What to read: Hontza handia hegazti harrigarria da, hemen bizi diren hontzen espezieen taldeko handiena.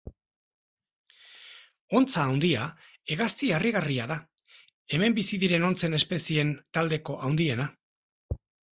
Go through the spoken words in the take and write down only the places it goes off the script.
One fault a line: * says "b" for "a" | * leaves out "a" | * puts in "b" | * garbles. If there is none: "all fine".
all fine